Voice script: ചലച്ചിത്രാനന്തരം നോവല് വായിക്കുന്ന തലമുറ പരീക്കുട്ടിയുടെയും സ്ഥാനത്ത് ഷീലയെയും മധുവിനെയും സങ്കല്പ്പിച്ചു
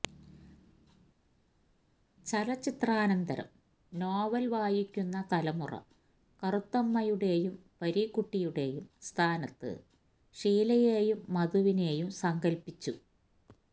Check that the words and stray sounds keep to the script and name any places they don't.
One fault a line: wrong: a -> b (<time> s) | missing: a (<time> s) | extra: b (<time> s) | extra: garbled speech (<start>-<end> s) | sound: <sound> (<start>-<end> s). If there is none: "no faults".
extra: കറുത്തമ്മയുടെയും (6.4 s)